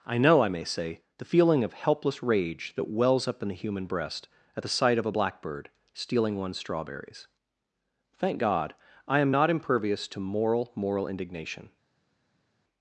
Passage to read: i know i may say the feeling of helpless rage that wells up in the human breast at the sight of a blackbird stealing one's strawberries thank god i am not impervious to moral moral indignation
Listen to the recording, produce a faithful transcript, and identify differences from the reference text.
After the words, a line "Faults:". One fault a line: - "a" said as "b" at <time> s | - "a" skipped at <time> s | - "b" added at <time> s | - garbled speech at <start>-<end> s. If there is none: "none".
i know i may say the feeling of helpless rage that wells up in the human breast at the sight of a blackbird stealing one's strawberries thank god i am not impervious to moral moral indignation
Faults:
none